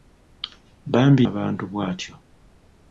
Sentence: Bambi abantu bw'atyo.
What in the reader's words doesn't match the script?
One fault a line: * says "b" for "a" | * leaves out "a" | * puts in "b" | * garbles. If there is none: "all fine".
all fine